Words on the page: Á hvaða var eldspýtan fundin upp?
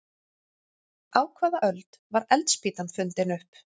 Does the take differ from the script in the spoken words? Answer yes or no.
yes